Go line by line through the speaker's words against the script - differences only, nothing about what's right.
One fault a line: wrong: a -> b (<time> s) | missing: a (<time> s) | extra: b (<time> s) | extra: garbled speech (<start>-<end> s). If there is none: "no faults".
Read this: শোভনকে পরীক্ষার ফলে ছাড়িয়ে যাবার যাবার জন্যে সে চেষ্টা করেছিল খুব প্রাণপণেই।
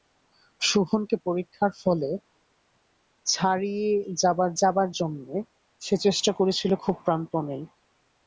no faults